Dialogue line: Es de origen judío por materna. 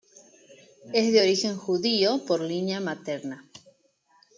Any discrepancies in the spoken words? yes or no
yes